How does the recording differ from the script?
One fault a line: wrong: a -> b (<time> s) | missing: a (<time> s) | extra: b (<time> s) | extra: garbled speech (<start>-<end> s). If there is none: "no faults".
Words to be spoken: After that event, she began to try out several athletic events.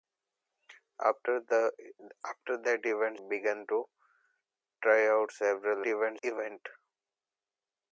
missing: she (3.2 s)
wrong: athletic -> event (5.9 s)